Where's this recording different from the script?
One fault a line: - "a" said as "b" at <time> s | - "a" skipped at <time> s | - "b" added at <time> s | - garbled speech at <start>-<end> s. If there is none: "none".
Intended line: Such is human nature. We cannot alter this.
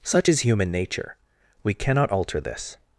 none